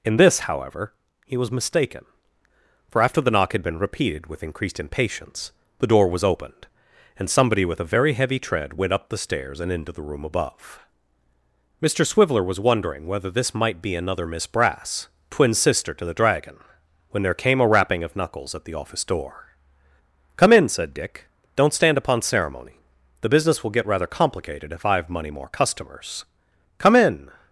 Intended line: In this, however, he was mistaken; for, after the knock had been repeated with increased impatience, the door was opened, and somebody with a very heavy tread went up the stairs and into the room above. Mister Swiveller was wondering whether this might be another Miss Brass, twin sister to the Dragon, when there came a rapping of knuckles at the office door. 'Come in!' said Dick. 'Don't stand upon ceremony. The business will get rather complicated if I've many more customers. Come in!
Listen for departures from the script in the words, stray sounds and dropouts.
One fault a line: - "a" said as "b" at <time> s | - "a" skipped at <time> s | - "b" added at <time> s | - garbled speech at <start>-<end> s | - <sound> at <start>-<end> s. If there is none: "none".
- "many" said as "money" at 25.1 s